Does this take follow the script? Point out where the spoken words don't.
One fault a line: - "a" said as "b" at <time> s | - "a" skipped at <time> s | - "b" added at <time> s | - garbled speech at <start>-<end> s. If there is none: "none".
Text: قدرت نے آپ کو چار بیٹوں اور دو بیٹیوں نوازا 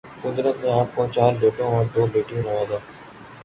none